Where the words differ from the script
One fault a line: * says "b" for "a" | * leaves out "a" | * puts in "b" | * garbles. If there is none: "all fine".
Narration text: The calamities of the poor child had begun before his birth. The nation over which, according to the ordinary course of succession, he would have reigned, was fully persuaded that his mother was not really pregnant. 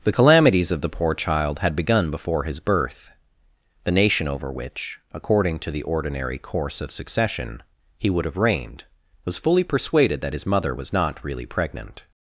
all fine